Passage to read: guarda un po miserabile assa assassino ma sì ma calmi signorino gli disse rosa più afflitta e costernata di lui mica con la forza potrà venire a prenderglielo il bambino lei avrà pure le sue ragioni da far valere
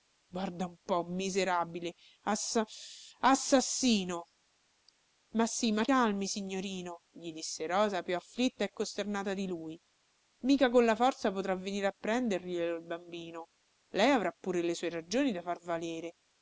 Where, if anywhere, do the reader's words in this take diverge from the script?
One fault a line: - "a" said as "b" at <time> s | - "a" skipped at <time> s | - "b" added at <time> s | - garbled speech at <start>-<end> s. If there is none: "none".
none